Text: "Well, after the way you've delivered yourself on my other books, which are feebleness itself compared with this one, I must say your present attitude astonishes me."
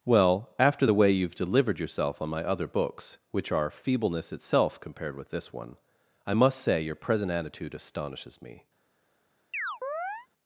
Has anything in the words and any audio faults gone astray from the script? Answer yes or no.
yes